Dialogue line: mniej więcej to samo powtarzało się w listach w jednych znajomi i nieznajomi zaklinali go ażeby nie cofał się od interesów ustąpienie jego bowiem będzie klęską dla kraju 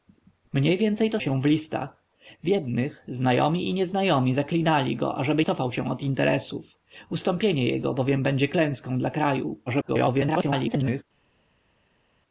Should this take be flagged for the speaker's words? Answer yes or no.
yes